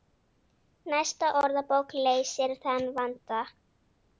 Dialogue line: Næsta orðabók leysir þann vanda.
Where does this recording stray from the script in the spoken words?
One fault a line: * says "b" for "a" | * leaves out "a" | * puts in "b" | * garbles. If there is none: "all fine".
all fine